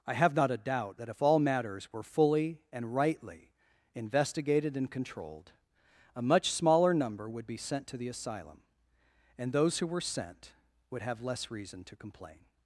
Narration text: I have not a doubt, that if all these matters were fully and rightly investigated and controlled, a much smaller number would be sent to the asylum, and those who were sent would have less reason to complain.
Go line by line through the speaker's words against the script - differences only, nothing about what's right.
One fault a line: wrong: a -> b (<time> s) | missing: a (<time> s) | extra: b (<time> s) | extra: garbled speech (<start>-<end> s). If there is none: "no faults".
missing: these (1.4 s)